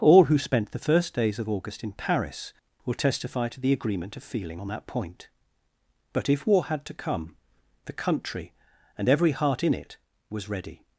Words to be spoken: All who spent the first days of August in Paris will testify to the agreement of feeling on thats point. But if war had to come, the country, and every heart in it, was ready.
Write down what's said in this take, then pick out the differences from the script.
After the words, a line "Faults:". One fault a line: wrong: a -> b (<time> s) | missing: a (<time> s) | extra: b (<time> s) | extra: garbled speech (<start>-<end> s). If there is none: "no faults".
All who spent the first days of August in Paris will testify to the agreement of feeling on that point. But if war had to come, the country, and every heart in it, was ready.
Faults:
wrong: thats -> that (4.7 s)